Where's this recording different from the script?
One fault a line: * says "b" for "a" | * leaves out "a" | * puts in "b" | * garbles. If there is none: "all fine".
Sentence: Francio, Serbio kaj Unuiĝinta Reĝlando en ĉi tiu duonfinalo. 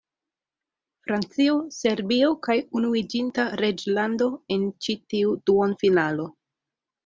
all fine